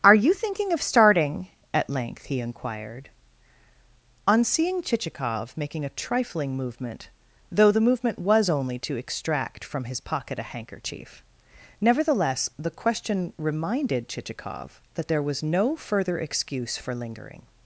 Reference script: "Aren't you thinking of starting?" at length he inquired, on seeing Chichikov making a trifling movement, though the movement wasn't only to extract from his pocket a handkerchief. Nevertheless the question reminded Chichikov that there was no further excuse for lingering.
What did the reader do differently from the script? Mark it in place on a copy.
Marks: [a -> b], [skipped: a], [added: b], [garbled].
["Aren't -> Are] you thinking of starting?" at length he inquired, on seeing Chichikov making a trifling movement, though the movement [wasn't -> was] only to extract from his pocket a handkerchief. Nevertheless the question reminded Chichikov that there was no further excuse for lingering.